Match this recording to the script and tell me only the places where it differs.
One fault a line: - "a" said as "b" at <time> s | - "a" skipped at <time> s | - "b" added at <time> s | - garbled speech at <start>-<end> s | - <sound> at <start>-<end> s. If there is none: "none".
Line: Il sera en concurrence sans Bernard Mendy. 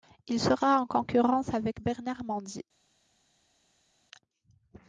- "sans" said as "avec" at 1.5 s